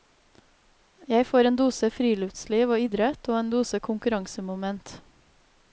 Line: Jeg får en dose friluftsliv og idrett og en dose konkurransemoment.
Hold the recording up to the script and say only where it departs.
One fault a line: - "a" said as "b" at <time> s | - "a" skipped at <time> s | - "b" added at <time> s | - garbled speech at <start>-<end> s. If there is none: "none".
none